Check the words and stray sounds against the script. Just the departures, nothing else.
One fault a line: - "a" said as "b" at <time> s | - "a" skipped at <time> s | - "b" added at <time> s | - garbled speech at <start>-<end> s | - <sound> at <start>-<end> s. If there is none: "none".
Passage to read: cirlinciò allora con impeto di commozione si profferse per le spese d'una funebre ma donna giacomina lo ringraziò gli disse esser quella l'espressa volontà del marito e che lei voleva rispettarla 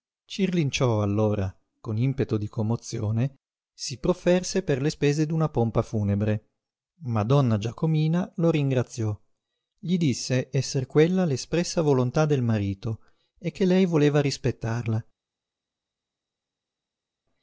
- "pompa" added at 5.5 s